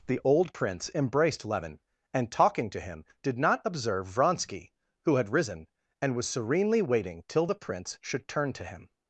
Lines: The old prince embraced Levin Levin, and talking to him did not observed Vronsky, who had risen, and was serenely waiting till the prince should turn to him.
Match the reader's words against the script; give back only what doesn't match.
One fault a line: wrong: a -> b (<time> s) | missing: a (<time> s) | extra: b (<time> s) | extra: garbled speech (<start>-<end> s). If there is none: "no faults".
missing: Levin (1.8 s)
wrong: observed -> observe (3.6 s)